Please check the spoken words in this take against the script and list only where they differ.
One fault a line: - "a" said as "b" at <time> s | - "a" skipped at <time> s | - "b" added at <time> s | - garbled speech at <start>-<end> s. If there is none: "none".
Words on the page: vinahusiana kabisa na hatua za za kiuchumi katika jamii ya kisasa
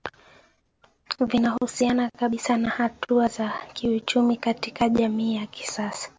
- "za" skipped at 3.5 s